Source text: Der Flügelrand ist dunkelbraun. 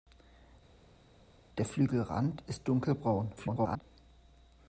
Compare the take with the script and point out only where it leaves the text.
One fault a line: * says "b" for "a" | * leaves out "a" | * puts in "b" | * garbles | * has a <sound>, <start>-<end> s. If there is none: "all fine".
* garbles